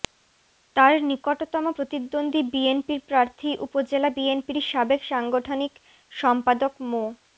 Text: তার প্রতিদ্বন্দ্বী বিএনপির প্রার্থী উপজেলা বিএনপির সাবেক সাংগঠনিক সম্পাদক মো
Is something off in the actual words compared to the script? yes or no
yes